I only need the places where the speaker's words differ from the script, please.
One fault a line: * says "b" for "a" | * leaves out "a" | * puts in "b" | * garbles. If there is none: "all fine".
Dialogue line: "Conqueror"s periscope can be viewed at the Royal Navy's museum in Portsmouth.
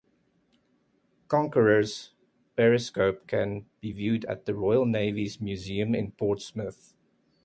all fine